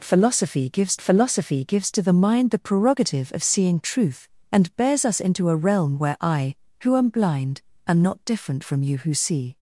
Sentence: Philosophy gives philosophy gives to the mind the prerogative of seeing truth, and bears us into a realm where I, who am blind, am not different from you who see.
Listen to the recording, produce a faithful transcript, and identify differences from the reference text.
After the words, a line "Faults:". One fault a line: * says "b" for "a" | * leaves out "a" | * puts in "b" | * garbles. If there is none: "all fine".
Philosophy gives philosophy gives to the mind the prerogative of seeing truth, and bears us into a realm where I, who am blind, am not different from you who see.
Faults:
all fine